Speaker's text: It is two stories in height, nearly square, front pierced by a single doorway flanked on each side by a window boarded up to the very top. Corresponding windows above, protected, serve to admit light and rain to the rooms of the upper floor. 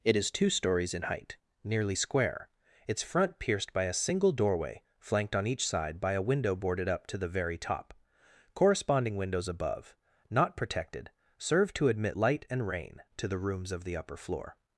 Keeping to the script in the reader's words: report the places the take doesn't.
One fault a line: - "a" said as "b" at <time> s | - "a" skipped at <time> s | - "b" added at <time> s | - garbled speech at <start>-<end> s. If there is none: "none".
- "its" added at 2.9 s
- "not" added at 10.3 s